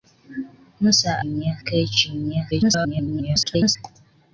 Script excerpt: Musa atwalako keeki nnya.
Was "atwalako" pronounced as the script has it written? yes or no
no